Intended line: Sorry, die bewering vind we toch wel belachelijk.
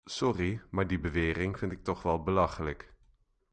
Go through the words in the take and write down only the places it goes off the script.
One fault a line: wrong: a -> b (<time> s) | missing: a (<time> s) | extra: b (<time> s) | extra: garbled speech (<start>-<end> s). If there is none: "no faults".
extra: maar (0.7 s)
wrong: we -> ik (1.7 s)